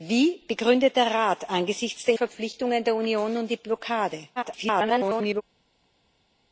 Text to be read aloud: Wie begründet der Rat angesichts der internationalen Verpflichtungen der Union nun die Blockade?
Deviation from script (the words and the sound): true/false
true